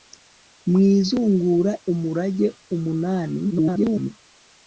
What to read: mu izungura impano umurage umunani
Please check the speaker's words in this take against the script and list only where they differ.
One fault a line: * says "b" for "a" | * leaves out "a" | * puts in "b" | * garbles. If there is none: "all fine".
* leaves out "impano"
* garbles